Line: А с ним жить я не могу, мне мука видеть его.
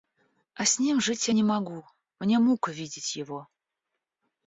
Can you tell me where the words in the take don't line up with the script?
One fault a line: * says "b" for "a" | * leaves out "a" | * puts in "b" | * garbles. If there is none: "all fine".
all fine